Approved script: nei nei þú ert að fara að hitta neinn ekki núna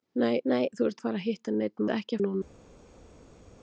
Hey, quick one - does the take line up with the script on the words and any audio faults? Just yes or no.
yes